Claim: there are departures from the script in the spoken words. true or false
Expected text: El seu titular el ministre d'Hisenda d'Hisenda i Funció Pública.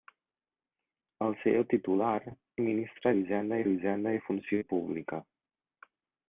false